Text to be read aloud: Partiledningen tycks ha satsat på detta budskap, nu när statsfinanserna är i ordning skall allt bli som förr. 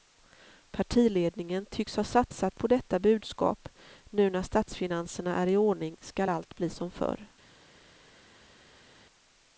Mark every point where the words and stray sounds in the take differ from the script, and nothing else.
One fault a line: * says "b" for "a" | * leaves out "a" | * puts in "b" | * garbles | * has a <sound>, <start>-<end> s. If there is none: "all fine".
all fine